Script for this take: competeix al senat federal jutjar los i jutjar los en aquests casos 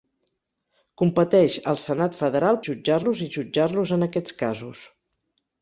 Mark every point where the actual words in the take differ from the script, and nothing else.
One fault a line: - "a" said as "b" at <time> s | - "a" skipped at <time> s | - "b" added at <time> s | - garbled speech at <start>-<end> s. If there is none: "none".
none